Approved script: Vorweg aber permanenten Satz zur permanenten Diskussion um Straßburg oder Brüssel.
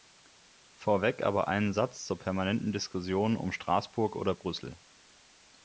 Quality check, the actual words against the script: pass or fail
fail